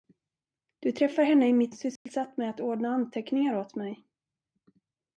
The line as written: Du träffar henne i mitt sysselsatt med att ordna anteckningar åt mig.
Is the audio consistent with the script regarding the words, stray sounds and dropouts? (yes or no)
no